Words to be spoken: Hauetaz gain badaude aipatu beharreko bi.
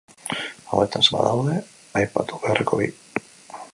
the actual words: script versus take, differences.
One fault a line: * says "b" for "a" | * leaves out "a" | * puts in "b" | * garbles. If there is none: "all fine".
* leaves out "gain"